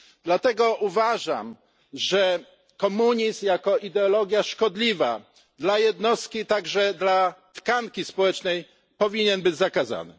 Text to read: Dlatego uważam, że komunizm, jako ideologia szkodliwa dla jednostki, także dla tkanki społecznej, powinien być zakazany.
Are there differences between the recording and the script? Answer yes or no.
no